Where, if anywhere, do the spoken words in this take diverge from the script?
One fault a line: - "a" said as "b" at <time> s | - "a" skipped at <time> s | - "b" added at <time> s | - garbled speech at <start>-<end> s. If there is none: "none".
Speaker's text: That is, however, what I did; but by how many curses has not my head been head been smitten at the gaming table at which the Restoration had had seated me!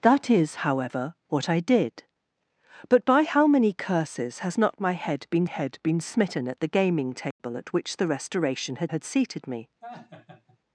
none